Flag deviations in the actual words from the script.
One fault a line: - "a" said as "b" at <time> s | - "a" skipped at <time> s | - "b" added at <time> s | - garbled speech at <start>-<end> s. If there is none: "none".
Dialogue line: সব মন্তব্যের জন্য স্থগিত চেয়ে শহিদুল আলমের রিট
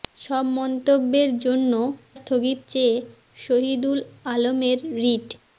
none